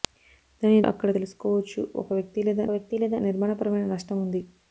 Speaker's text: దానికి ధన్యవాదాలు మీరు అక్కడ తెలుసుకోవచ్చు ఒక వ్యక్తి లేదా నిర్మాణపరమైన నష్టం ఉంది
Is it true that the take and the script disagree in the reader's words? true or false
true